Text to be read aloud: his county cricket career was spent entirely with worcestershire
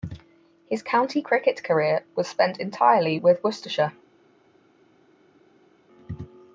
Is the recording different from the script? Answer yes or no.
no